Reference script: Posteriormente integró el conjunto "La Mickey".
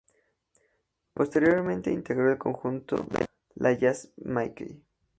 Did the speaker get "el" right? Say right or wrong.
right